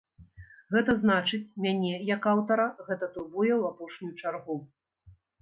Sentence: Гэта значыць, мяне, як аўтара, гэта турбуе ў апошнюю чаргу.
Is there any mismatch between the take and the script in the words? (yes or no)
no